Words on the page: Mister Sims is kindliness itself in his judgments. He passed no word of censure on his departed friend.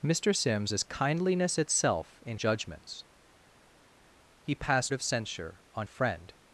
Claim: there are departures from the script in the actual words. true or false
true